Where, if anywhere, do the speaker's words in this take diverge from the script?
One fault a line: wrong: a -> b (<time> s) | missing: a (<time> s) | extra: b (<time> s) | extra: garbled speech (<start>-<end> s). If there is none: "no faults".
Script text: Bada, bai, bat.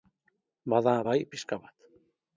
extra: pixka (1.3 s)